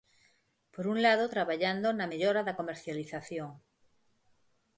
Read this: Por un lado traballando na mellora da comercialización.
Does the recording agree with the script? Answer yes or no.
yes